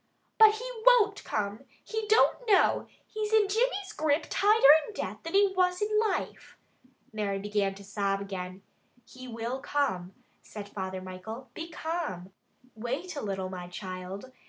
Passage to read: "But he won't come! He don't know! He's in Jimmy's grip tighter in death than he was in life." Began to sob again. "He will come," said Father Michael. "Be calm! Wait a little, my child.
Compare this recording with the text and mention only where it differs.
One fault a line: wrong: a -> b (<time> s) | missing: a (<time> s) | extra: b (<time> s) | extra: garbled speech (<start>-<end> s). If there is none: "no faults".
extra: Mary (7.1 s)